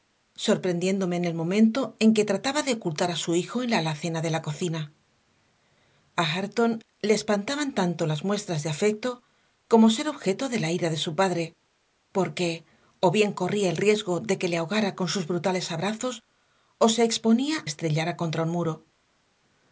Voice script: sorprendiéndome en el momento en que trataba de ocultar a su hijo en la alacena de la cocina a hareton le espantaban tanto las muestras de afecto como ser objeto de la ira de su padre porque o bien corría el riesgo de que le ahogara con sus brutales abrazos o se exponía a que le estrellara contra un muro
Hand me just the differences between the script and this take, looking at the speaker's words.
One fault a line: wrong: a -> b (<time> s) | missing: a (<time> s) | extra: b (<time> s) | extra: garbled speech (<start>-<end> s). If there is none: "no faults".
missing: a que le (17.6 s)